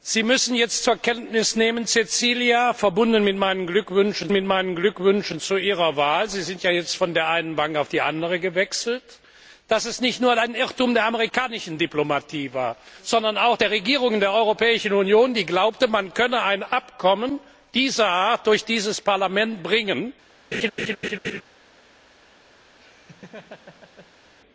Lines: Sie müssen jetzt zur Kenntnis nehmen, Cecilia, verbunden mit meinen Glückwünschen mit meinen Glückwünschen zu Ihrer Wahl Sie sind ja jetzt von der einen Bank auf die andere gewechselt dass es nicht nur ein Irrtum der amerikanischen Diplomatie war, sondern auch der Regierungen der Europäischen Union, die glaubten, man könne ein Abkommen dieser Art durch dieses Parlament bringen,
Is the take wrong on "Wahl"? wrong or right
right